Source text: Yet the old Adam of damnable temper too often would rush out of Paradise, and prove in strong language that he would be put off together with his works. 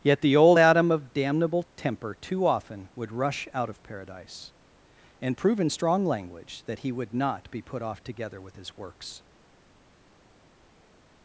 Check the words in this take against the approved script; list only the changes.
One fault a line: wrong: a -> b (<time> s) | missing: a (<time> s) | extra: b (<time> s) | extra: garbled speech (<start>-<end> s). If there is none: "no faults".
extra: not (7.1 s)